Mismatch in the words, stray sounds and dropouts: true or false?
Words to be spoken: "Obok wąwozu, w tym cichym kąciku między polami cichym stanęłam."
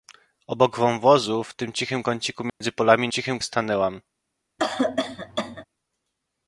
true